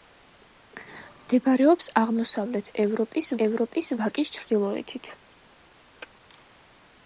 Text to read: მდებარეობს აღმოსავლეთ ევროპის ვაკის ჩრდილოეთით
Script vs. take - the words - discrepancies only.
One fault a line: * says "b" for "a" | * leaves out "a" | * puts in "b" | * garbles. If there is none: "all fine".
* puts in "ევროპის"